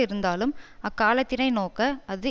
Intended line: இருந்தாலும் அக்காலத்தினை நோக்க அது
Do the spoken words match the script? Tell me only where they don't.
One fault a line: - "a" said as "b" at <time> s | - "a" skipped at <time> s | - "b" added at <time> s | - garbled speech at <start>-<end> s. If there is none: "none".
none